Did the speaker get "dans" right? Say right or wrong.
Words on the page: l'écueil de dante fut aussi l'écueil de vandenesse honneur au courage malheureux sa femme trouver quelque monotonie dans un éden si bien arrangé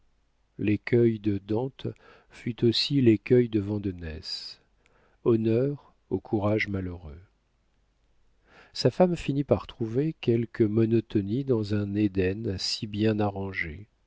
right